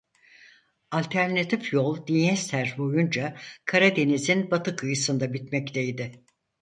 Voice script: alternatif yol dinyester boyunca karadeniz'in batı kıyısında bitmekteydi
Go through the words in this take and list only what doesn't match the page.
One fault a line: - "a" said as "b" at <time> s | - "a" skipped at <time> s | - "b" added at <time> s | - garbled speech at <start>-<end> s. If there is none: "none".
none